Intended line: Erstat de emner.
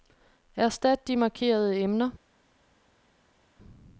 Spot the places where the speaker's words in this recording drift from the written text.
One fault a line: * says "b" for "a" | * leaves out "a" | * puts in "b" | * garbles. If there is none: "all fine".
* puts in "markerede"